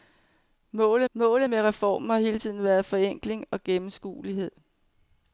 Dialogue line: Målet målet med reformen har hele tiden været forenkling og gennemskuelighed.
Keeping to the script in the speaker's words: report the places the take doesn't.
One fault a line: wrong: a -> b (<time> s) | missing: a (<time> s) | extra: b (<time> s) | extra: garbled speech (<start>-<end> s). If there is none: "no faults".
no faults